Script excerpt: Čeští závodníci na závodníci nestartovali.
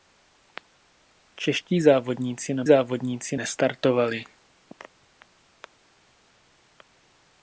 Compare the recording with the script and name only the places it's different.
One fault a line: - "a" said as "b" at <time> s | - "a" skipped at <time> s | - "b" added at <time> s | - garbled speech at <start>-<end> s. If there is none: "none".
none